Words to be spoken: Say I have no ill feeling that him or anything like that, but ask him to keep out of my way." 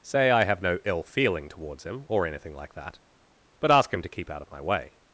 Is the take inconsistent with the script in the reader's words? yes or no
yes